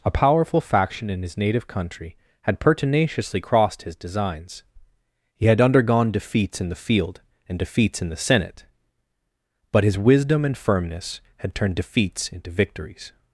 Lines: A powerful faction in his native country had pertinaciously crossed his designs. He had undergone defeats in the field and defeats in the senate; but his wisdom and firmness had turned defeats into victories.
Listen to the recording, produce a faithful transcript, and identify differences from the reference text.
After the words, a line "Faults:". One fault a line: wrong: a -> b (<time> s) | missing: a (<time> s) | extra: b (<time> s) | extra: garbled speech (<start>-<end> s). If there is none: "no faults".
A powerful faction in his native country had pertinaciously crossed his designs. He had undergone defeats in the field and defeats in the senate; but his wisdom and firmness had turned defeats into victories.
Faults:
no faults